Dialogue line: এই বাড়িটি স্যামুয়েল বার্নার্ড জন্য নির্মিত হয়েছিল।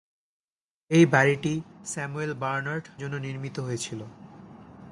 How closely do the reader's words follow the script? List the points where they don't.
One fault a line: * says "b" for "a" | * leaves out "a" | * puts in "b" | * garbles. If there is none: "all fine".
all fine